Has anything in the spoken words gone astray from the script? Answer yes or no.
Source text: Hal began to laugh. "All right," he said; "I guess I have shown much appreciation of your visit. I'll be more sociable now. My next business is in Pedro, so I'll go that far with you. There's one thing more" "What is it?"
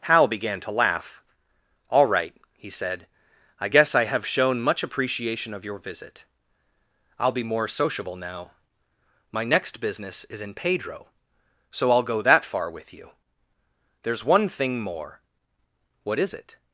no